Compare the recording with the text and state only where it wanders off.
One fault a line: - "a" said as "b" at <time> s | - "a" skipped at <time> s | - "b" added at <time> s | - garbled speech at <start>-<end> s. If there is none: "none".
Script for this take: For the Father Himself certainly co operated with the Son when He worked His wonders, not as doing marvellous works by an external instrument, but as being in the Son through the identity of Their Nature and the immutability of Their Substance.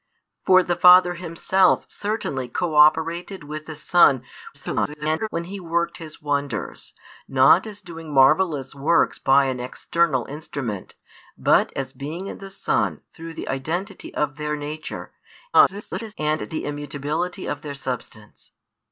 - garbled speech at 4.5-5.3 s
- garbled speech at 15.5-16.1 s